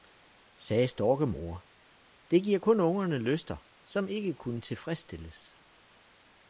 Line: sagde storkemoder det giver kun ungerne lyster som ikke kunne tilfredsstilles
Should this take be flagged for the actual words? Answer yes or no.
no